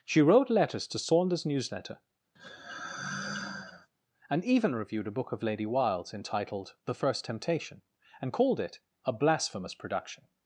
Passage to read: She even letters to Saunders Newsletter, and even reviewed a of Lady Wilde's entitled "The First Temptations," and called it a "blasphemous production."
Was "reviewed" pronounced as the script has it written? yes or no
yes